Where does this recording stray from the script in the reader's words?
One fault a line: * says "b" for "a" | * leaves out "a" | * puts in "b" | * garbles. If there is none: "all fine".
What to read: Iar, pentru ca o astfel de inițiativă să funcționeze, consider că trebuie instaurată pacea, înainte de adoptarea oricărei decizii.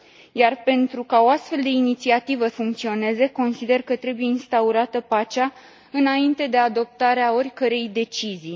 * leaves out "să"